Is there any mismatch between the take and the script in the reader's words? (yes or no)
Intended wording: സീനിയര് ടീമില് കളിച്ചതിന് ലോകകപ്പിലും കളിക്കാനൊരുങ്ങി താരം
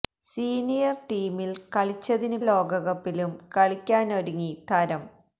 no